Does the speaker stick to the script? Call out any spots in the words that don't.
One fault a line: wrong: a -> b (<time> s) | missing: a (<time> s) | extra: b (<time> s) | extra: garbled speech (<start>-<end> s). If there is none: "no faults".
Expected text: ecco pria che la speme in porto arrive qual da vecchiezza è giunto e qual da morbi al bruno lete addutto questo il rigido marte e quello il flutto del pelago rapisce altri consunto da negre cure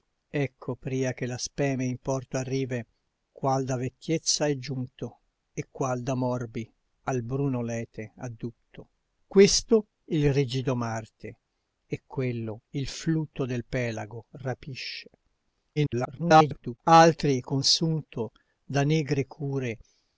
extra: garbled speech (15.8-16.8 s)